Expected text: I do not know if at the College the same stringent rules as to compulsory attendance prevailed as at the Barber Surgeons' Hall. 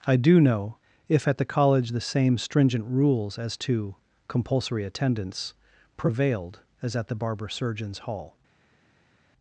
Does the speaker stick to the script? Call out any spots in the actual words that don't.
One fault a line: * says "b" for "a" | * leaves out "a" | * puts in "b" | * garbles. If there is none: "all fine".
* leaves out "not"